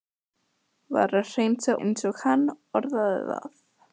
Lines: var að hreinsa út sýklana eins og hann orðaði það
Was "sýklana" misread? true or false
true